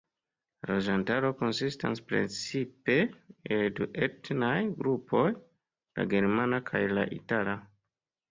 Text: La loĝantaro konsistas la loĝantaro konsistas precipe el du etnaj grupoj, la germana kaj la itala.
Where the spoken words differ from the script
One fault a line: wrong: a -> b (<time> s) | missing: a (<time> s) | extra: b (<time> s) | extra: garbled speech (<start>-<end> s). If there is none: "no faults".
missing: la loĝantaro konsistas (2.0 s)